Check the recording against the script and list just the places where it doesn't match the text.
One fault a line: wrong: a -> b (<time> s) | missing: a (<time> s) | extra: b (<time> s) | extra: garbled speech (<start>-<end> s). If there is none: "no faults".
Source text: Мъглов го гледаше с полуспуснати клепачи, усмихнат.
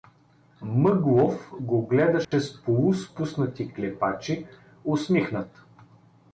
no faults